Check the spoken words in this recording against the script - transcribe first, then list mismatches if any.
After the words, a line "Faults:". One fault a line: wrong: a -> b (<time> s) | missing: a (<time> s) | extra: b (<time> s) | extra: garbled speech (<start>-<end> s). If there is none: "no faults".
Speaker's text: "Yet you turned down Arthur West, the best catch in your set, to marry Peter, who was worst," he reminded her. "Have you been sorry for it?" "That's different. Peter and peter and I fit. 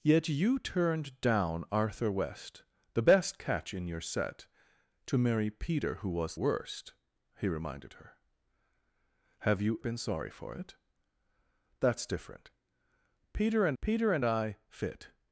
"Yet you turned down Arthur West, the best catch in your set, to marry Peter, who was worst," he reminded her. "Have you been sorry for it?" "That's different. Peter and peter and I fit.
Faults:
no faults